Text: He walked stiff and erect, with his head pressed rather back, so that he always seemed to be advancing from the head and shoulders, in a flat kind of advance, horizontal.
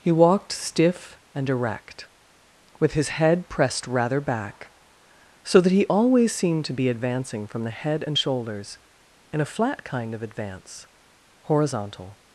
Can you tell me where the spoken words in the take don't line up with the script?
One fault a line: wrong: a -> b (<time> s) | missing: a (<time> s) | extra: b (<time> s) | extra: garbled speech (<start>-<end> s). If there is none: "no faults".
no faults